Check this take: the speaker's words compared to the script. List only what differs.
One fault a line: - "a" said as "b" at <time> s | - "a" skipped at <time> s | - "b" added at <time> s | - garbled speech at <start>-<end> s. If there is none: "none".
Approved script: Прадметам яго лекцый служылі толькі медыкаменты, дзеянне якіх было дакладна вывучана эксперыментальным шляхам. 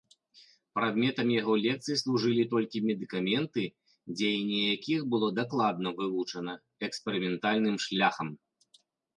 none